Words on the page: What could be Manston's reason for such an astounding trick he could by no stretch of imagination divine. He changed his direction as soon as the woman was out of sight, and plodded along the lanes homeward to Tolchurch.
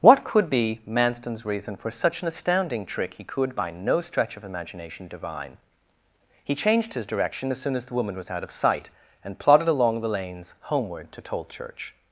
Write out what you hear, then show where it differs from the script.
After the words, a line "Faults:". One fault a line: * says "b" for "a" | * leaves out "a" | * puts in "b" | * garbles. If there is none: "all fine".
What could be Manston's reason for such an astounding trick he could by no stretch of imagination divine. He changed his direction as soon as the woman was out of sight, and plodded along the lanes homeward to Tolchurch.
Faults:
all fine